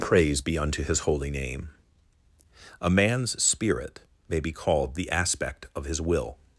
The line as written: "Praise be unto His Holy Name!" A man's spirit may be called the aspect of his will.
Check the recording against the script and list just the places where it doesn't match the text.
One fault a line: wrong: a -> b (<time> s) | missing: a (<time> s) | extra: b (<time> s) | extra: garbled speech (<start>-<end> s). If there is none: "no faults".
no faults